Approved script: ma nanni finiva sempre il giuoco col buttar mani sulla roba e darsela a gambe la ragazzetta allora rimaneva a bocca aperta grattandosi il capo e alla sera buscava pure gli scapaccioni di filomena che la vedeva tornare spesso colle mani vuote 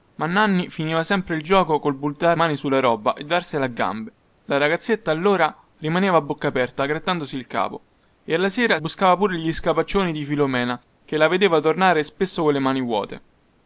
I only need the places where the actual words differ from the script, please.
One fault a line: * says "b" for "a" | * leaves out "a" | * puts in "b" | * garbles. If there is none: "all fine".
all fine